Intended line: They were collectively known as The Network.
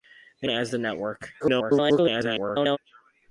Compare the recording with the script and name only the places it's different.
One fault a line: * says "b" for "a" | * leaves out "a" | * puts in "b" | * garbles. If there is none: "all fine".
* leaves out "were collectively known"
* garbles